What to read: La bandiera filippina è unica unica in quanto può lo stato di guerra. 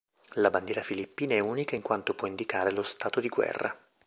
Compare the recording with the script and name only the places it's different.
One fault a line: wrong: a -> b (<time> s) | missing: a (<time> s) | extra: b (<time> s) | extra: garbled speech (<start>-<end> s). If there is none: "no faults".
missing: unica (1.7 s)
extra: indicare (2.3 s)